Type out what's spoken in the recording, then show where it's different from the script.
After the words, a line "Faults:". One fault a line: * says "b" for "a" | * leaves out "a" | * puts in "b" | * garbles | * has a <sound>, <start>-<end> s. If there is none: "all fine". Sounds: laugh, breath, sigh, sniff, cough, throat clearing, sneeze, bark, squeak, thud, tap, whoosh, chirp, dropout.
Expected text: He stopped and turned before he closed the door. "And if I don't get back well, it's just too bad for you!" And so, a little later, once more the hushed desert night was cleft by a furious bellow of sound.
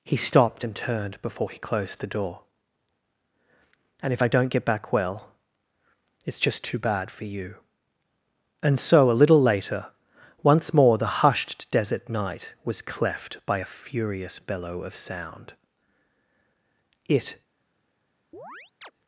He stopped and turned before he closed the door. "And if I don't get back well, it's just too bad for you!" And so, a little later, once more the hushed desert night was cleft by a furious bellow of sound. It
Faults:
* puts in "It"
* has a chirp, 18.3-18.9 s